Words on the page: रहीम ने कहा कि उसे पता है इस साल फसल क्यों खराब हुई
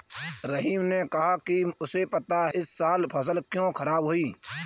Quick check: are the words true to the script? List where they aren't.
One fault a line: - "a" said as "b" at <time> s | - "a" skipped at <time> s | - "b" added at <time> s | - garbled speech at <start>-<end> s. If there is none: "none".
- "है" skipped at 2.5 s